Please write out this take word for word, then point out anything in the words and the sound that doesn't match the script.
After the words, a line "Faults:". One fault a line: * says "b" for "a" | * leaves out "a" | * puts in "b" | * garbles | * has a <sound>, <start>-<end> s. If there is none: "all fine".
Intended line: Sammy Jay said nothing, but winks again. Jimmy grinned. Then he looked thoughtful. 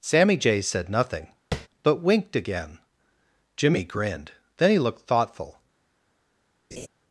Sammy Jay said nothing, but winked again. Jimmy grinned. Then he looked thoughtful.
Faults:
* has a tap, 1.5-1.7 s
* says "winked" for "winks"
* has a laugh, 6.7-6.9 s